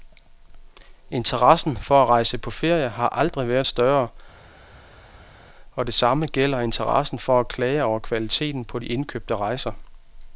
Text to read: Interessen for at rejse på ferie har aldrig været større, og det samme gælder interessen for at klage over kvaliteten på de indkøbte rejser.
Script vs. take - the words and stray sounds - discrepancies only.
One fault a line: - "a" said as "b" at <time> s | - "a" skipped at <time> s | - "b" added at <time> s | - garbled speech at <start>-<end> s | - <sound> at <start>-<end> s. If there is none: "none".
none